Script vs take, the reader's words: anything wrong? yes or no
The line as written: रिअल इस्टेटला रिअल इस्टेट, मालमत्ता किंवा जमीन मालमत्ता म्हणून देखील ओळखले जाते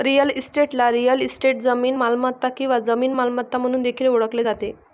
yes